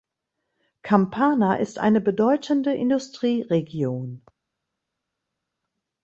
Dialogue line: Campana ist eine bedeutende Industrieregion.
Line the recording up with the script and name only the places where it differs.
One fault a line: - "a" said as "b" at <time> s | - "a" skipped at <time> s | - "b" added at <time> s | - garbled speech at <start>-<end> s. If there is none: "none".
none